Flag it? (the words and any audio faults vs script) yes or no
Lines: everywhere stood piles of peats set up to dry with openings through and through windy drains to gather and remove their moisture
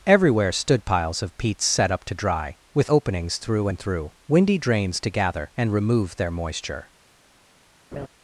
yes